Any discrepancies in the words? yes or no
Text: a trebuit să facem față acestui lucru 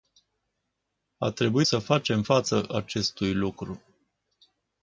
no